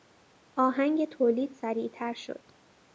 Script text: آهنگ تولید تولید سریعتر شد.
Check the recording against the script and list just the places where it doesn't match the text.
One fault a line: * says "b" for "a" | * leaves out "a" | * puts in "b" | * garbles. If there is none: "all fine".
* leaves out "تولید"